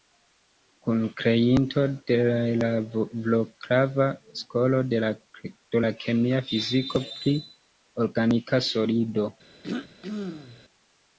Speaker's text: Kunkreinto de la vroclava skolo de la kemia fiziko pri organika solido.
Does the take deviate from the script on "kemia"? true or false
false